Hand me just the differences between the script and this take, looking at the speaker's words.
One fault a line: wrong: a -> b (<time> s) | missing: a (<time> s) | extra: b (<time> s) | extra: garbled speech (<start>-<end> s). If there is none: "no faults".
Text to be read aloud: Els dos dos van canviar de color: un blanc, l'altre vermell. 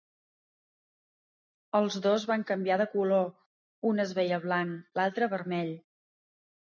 missing: dos (2.2 s)
extra: es veia (4.0 s)